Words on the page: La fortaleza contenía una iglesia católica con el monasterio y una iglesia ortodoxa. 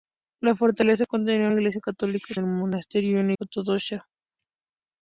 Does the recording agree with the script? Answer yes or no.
no